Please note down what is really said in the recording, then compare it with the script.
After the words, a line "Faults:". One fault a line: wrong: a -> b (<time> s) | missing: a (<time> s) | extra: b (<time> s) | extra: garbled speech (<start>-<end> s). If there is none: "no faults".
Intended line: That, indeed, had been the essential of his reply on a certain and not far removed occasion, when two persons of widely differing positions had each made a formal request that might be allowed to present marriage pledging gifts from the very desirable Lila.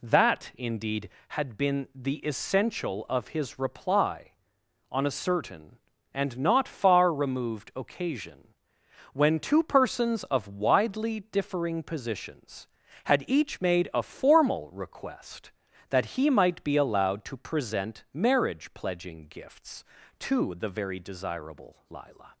That, indeed, had been the essential of his reply on a certain and not far removed occasion, when two persons of widely differing positions had each made a formal request that he might be allowed to present marriage pledging gifts to the very desirable Lila.
Faults:
extra: he (16.2 s)
wrong: from -> to (20.2 s)